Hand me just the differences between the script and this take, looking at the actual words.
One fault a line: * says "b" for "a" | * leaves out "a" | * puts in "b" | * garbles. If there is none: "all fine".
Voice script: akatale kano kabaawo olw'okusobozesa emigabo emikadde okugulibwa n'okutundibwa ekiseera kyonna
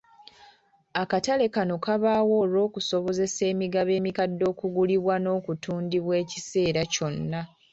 all fine